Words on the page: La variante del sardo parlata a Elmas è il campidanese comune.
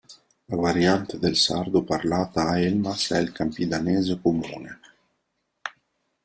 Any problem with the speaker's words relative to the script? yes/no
no